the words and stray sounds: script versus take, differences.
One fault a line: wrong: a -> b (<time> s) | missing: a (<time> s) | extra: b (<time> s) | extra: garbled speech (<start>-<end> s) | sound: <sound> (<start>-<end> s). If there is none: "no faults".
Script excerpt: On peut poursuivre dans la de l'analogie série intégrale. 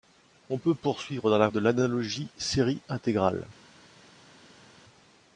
no faults